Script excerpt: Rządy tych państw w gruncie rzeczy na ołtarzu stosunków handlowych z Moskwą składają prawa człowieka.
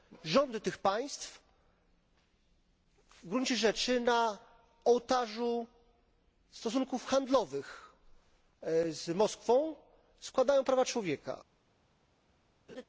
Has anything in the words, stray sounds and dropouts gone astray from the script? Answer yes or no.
yes